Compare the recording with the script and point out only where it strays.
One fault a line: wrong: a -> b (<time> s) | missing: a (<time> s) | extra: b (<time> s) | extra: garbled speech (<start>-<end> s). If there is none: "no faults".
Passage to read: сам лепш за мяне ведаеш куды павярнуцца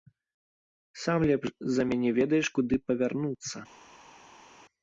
no faults